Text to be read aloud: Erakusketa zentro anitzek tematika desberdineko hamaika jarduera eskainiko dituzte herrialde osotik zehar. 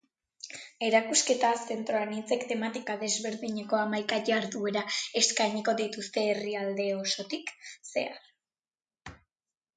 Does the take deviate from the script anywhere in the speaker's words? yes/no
no